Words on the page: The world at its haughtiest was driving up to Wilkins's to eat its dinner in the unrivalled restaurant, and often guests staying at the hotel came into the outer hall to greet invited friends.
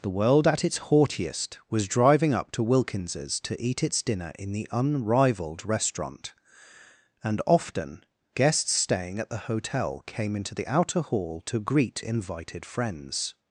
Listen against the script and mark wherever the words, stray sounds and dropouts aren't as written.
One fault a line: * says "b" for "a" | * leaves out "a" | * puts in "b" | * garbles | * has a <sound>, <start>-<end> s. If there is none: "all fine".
all fine